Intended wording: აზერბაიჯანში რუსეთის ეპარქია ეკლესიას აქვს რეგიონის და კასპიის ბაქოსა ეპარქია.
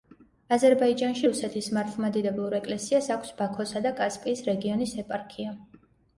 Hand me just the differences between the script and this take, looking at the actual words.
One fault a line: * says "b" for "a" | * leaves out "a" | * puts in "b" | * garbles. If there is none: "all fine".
* says "მართლმადიდებლურ" for "ეპარქია"
* says "ბაქოსა" for "რეგიონის"
* says "რეგიონის" for "ბაქოსა"